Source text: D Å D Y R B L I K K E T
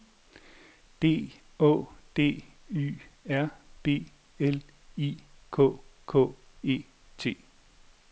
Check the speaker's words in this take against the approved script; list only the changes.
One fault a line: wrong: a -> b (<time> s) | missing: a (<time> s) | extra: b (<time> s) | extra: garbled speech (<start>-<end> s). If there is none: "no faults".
no faults